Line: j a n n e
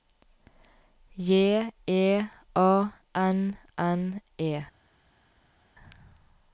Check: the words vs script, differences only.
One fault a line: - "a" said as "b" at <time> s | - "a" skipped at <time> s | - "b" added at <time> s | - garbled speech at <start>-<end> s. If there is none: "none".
- "e" added at 1.9 s